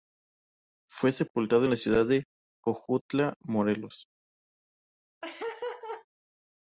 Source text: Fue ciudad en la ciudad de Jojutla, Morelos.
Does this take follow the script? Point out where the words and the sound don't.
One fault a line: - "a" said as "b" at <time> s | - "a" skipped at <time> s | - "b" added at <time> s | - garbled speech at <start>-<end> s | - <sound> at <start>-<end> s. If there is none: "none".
- "ciudad" said as "sepultado" at 1.1 s
- laugh at 5.2-6.1 s